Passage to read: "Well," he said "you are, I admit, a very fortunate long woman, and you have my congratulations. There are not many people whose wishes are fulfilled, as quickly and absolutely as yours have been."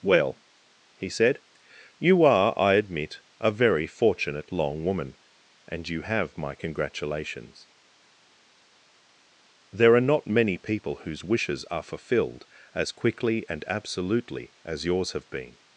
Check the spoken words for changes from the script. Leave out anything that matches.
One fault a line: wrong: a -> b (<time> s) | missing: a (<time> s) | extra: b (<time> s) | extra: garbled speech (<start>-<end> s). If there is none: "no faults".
no faults